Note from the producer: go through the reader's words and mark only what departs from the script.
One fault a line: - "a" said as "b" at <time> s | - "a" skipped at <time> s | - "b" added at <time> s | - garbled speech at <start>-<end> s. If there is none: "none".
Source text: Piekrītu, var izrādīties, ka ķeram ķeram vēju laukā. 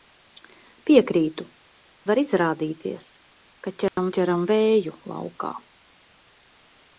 none